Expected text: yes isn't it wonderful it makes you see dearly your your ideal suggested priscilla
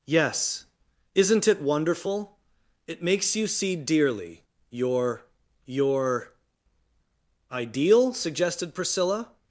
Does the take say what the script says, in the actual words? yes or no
yes